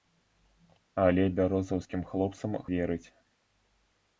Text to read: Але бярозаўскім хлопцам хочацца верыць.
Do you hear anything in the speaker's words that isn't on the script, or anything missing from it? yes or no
yes